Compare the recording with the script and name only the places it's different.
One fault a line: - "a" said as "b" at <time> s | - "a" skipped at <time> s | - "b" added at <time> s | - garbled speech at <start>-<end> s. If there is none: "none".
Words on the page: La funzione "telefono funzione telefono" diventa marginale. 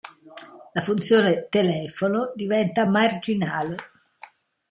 - "funzione telefono" skipped at 2.3 s